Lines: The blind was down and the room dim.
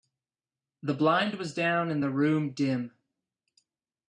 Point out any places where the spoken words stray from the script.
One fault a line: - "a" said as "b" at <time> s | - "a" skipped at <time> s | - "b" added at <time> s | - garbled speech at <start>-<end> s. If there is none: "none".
none